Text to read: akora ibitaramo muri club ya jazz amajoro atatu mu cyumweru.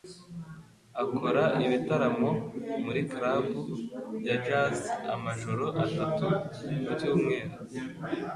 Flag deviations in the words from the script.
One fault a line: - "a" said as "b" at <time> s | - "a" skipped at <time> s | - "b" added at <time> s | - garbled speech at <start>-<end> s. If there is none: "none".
none